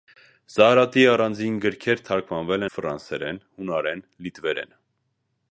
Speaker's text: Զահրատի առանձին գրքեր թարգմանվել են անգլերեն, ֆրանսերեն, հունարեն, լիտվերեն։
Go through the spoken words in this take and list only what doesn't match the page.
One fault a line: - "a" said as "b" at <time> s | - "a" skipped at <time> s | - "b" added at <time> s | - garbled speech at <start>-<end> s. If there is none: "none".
- "են անգլերեն" skipped at 2.7 s